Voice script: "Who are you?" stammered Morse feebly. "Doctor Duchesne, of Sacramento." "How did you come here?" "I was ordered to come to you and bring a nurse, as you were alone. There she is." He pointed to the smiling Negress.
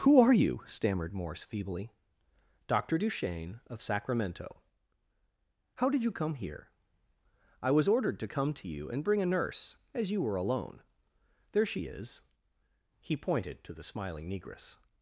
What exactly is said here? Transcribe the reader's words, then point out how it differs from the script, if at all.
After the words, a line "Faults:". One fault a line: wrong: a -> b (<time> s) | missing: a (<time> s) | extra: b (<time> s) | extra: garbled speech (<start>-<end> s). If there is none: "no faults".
"Who are you?" stammered Morse feebly. "Doctor Duchesne, of Sacramento." "How did you come here?" "I was ordered to come to you and bring a nurse, as you were alone. There she is." He pointed to the smiling Negress.
Faults:
no faults